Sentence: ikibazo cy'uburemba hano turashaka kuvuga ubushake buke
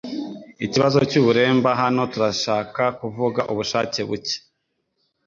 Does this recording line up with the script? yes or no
yes